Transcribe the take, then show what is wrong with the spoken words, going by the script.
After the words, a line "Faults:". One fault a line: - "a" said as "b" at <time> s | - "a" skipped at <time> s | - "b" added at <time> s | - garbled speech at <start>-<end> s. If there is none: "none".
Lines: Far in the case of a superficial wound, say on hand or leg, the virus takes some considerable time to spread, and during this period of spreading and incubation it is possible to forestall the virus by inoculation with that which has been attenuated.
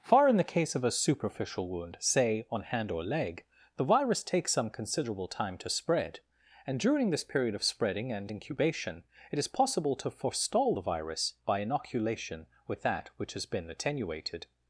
Far in the case of a superficial wound, say on hand or leg, the virus takes some considerable time to spread, and during this period of spreading and incubation it is possible to forestall the virus by inoculation with that which has been attenuated.
Faults:
none